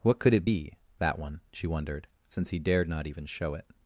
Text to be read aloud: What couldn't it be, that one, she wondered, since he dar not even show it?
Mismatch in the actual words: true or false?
true